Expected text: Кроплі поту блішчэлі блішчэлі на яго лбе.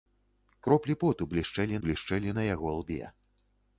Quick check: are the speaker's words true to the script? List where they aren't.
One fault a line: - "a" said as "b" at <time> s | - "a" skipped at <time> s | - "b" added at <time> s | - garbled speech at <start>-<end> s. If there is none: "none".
none